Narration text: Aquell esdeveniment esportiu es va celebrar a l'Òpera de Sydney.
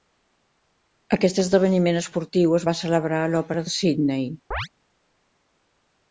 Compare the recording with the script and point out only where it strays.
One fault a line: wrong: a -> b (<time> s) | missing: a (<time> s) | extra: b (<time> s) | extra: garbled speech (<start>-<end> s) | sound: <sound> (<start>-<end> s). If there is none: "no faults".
wrong: Aquell -> Aquest (1.2 s)
sound: chirp (4.5-4.7 s)